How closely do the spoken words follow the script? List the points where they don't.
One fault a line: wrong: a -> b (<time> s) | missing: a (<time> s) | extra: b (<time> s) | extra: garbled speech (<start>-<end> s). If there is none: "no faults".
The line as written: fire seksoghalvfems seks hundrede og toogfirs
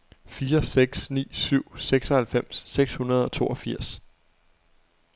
extra: seks ni syv (0.6 s)